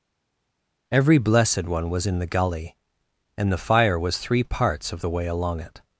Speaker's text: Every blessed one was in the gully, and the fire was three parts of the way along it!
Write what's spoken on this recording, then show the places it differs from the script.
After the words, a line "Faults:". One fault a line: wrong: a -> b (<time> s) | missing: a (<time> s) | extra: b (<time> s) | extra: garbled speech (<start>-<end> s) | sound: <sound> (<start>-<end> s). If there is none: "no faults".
Every blessed one was in the gully, and the fire was three parts of the way along it!
Faults:
no faults